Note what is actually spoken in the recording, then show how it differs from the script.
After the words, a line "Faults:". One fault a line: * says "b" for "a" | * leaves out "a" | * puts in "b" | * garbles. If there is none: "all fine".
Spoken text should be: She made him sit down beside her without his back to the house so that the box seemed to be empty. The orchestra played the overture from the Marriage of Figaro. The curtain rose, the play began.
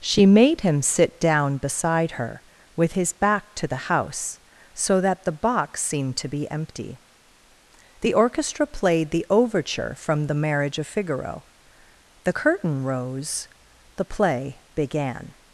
She made him sit down beside her with his back to the house so that the box seemed to be empty. The orchestra played the overture from the Marriage of Figaro. The curtain rose, the play began.
Faults:
* says "with" for "without"